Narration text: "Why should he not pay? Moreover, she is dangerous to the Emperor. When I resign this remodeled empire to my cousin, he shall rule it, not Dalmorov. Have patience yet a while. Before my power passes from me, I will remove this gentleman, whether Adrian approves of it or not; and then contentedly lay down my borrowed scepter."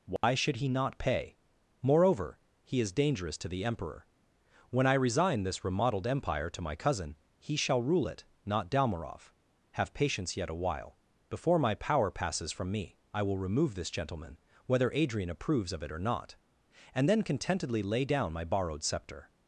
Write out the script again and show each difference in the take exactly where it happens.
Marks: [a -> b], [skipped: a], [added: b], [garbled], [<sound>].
"Why [dropout] should he not pay? Moreover, [she -> he] is dangerous to the Emperor. When I resign this remodeled empire to my cousin, he shall rule it, not Dalmorov. Have patience yet a while. Before my power passes from me, I will remove this gentleman, whether Adrian approves of it or not; and then contentedly lay down my borrowed scepter."